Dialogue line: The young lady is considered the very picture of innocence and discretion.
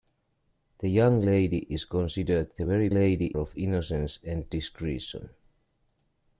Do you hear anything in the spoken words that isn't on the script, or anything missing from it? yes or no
yes